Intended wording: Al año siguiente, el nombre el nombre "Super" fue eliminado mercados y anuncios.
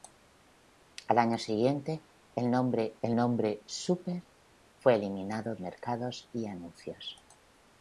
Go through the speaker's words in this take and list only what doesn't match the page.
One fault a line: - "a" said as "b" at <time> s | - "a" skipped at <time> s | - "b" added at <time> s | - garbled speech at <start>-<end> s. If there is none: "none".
none